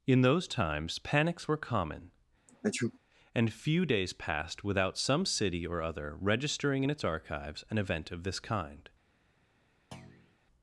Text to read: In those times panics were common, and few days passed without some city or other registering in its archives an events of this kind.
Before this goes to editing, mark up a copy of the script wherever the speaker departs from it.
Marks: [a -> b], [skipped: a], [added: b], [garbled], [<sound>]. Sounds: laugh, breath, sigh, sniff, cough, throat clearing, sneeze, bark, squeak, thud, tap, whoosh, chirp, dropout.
In those times panics were common, [sneeze] and few days passed without some city or other registering in its archives an [events -> event] of this kind. [thud]